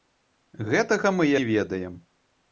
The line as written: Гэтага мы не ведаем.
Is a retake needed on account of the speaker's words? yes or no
no